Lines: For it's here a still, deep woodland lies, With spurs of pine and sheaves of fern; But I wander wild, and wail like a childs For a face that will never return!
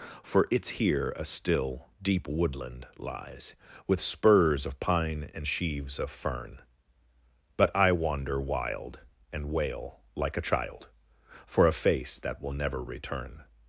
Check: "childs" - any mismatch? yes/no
yes